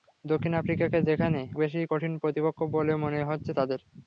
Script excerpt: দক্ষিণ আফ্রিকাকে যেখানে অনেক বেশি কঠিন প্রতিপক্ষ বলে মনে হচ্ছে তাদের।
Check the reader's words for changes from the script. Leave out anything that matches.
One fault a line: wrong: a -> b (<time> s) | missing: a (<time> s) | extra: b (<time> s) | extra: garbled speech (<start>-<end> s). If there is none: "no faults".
missing: অনেক (1.4 s)